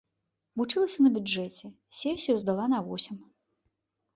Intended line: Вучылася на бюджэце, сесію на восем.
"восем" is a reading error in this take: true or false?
false